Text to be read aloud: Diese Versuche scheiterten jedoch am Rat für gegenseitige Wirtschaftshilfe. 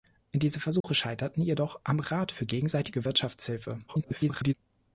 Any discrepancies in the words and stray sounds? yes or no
yes